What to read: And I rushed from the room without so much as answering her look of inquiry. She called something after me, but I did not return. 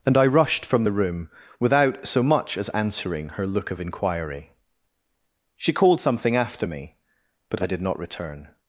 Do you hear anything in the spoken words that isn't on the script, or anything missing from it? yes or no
no